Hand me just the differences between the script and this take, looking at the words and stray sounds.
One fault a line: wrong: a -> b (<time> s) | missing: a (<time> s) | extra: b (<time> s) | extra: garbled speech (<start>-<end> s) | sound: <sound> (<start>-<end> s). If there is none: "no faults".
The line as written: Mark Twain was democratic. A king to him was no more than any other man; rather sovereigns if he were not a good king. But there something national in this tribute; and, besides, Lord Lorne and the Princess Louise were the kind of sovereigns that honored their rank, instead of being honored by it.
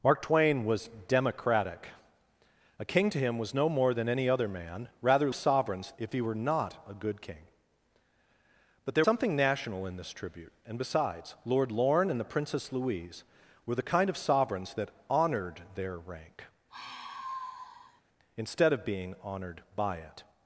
sound: sigh (16.7-18.0 s)